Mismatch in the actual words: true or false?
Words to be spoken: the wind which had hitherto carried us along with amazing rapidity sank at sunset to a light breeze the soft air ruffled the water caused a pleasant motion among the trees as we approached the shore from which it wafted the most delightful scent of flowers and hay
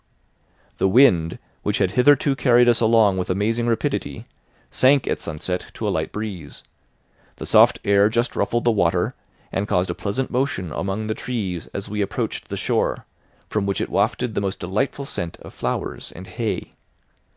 true